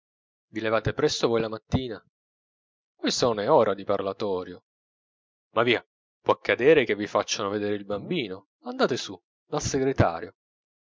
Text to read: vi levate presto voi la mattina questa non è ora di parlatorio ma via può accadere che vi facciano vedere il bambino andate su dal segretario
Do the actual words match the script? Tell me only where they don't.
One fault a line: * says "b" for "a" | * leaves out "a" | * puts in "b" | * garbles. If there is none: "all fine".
all fine